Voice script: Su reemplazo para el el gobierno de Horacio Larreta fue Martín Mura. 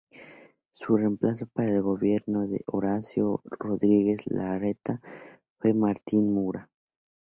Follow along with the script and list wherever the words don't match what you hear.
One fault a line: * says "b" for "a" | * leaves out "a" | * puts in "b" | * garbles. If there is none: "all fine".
* leaves out "el"
* puts in "Rodríguez"